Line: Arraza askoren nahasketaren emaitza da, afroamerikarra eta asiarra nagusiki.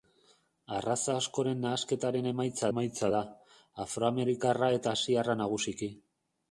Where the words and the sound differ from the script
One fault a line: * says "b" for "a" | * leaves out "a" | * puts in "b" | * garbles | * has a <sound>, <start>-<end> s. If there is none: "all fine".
* puts in "emaitza"